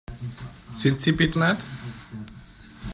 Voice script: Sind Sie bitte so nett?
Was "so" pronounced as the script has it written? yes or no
no